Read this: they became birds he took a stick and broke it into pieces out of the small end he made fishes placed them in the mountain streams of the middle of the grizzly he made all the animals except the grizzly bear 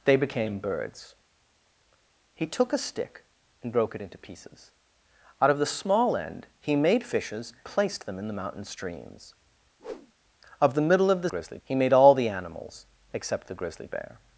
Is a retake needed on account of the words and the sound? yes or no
yes